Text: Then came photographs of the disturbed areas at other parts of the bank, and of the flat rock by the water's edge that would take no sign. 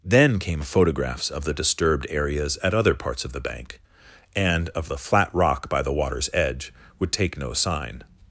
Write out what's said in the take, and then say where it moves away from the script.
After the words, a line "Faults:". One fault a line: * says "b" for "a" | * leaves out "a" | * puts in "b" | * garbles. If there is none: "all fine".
Then came photographs of the disturbed areas at other parts of the bank, and of the flat rock by the water's edge would take no sign.
Faults:
* leaves out "that"